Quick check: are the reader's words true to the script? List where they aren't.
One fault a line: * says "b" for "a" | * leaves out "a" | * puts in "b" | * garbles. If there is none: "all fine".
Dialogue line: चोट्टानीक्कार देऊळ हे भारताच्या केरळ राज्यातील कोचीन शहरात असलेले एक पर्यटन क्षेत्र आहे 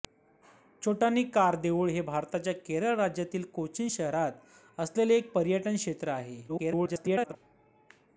* garbles